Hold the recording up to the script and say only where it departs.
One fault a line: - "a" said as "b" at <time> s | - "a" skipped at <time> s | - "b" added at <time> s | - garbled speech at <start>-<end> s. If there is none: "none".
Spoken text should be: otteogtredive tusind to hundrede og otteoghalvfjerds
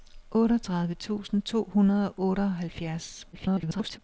- garbled speech at 3.3-4.0 s